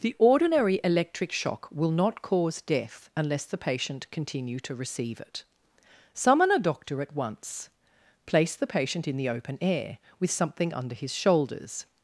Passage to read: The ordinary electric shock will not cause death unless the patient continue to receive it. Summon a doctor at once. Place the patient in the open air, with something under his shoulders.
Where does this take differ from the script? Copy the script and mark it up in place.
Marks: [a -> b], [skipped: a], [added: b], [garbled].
The ordinary electric shock will not cause death unless the patient continue to receive it. Summon a doctor at once. Place the patient in the open air, with something under his shoulders.